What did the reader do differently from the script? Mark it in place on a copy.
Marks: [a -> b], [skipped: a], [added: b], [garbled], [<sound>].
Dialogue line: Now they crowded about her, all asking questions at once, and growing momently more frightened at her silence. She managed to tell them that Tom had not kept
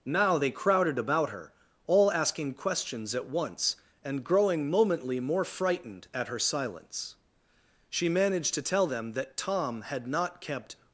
Now they crowded about her, all asking questions at once, and growing momently more frightened at her silence. She managed to tell them that Tom had not kept